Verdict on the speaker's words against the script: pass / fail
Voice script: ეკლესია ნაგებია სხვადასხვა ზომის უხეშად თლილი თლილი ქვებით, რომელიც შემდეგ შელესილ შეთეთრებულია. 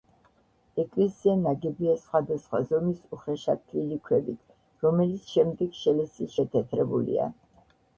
fail